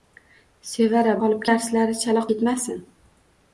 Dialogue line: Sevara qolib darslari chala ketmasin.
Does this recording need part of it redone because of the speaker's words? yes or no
no